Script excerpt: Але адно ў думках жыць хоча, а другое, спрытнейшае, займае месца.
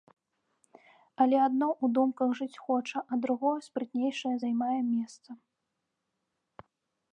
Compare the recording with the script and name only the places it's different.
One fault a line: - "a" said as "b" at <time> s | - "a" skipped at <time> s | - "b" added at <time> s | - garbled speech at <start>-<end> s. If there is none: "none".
none